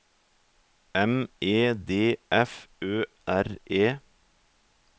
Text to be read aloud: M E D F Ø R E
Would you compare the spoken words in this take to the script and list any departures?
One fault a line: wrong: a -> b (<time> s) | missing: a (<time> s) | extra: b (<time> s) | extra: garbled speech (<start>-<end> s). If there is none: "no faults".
no faults